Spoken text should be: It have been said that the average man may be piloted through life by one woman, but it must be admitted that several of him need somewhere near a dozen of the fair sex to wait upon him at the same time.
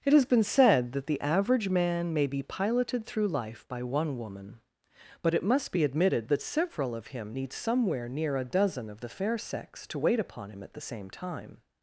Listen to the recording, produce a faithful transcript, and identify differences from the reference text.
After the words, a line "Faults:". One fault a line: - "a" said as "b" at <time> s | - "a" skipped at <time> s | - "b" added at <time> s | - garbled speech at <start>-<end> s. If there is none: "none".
It has been said that the average man may be piloted through life by one woman, but it must be admitted that several of him need somewhere near a dozen of the fair sex to wait upon him at the same time.
Faults:
- "have" said as "has" at 0.1 s